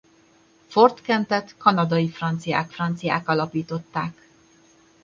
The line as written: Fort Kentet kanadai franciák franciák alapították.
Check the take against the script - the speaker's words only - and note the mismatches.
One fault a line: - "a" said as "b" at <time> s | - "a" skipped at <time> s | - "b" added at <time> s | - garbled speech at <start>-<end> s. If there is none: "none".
none